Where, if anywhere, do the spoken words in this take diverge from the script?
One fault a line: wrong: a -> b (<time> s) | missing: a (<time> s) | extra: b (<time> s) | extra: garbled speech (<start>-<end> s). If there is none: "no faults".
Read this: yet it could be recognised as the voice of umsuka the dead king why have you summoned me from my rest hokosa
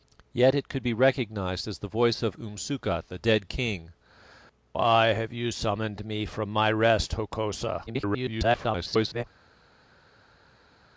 extra: garbled speech (7.9-9.2 s)